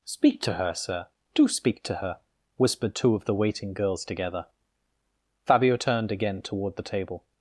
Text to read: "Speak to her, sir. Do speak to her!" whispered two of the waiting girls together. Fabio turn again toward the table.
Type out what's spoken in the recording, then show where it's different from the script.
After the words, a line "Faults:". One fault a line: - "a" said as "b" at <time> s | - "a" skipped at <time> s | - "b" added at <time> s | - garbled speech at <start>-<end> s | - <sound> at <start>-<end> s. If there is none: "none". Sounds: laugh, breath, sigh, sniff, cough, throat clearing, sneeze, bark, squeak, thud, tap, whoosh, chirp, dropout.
"Speak to her, sir. Do speak to her!" whispered two of the waiting girls together. Fabio turned again toward the table.
Faults:
- "turn" said as "turned" at 5.7 s